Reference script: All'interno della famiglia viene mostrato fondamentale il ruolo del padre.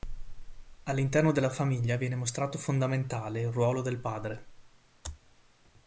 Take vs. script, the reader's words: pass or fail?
pass